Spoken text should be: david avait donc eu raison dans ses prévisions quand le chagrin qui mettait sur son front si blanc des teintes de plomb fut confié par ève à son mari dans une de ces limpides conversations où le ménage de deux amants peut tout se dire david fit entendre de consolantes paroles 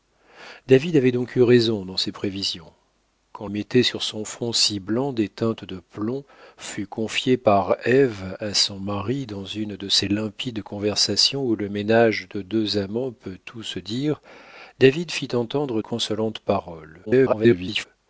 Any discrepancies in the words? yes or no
yes